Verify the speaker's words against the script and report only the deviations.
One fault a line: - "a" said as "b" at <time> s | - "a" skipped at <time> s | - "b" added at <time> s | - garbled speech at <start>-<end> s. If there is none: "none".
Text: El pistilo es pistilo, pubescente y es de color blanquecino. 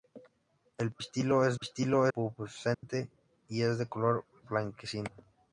none